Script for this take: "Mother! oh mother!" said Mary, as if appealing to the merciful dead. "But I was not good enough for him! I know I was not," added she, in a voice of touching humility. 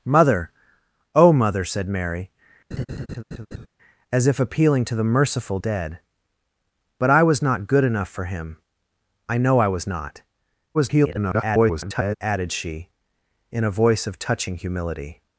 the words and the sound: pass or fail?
fail